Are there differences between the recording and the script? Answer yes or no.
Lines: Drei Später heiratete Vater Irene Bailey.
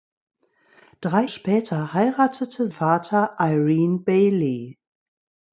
no